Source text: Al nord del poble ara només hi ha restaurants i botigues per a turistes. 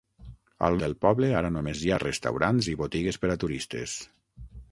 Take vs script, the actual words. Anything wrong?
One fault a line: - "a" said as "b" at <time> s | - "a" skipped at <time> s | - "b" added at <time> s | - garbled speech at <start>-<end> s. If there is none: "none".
- "nord" skipped at 0.8 s